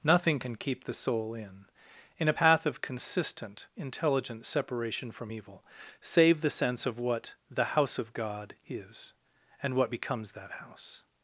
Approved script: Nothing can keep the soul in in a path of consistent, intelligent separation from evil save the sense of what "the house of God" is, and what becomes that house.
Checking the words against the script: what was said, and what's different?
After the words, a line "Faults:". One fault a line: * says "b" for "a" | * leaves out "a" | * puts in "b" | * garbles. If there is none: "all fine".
Nothing can keep the soul in in a path of consistent, intelligent separation from evil save the sense of what "the house of God" is, and what becomes that house.
Faults:
all fine